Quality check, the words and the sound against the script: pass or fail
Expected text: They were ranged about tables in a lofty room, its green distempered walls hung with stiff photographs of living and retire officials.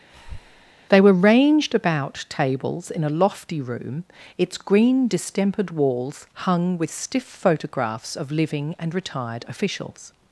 fail